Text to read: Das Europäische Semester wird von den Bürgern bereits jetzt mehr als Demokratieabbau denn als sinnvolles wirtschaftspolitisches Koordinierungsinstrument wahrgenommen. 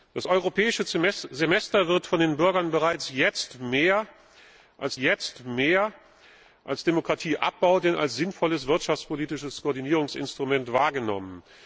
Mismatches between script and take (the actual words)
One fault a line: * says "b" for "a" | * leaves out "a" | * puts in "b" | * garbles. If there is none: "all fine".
* puts in "jetzt mehr als"